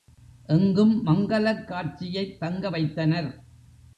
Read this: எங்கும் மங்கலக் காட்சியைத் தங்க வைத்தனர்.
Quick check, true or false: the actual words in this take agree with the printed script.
true